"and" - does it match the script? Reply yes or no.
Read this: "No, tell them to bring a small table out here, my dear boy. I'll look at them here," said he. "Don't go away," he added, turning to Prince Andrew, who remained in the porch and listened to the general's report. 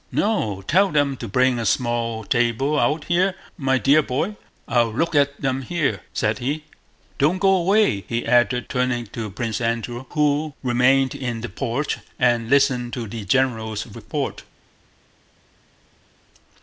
yes